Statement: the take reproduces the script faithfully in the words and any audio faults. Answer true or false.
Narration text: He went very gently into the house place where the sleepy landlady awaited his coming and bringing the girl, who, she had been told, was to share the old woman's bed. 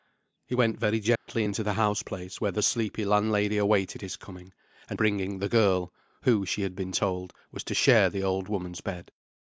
false